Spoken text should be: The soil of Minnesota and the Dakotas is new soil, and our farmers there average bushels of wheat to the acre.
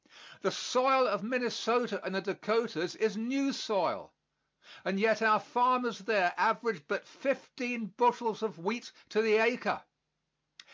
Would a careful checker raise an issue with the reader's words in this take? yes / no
yes